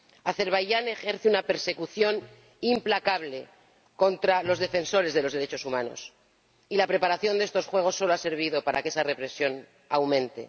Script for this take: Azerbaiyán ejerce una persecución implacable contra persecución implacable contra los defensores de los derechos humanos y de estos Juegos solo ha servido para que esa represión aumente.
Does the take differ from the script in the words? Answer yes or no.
yes